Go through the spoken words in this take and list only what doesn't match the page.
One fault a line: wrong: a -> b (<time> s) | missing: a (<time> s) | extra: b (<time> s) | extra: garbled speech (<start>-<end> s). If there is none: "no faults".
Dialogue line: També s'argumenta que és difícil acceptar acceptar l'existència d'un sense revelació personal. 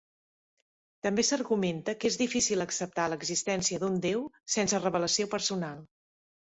missing: acceptar (3.1 s)
extra: déu (4.1 s)